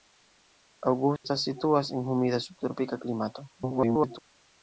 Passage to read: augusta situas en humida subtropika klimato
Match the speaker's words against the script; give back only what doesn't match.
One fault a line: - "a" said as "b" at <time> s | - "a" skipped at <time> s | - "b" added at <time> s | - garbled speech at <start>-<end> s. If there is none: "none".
- garbled speech at 3.5-4.2 s